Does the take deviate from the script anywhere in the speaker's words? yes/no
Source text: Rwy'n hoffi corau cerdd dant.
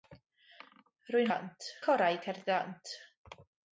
yes